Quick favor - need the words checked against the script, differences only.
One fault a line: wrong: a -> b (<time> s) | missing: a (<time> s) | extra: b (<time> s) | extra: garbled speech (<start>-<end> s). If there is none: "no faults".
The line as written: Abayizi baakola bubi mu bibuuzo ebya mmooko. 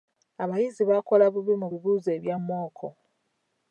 no faults